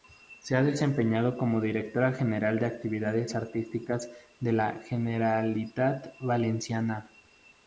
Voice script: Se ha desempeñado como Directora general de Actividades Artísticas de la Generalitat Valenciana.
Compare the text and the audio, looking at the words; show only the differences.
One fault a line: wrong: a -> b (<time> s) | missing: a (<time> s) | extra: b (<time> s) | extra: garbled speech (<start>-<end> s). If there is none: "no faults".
no faults